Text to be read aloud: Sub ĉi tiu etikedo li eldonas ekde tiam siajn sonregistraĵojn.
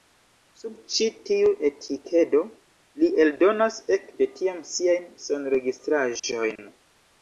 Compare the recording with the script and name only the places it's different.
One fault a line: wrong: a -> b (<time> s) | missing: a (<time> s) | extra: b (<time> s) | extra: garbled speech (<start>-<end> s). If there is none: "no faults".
no faults